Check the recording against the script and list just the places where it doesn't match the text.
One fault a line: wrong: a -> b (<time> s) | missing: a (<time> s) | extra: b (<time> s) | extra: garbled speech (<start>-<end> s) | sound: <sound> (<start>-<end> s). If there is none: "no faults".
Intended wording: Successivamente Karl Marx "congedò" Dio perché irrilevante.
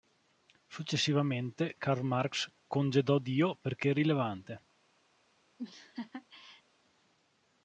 sound: laugh (5.6-6.6 s)